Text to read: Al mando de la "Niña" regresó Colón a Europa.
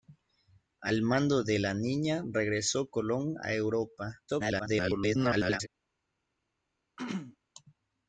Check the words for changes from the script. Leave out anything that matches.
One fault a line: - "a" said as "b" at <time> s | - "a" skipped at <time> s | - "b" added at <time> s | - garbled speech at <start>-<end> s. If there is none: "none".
- garbled speech at 4.3-5.7 s